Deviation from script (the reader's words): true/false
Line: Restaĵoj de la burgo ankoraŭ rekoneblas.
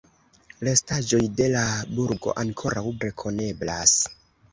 false